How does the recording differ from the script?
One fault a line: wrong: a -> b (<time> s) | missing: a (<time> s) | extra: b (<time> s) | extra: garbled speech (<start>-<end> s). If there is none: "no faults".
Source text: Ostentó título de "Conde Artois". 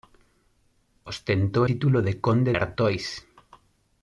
no faults